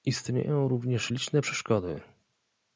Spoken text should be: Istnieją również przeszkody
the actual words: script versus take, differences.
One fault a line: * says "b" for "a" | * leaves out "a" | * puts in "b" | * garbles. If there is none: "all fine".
* puts in "liczne"